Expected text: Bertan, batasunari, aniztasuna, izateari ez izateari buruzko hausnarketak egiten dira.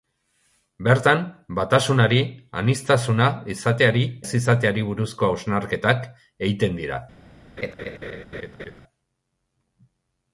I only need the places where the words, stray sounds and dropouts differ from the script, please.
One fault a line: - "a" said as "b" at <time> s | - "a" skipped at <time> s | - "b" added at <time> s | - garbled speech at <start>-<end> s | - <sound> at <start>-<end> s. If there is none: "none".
- laugh at 7.6-8.8 s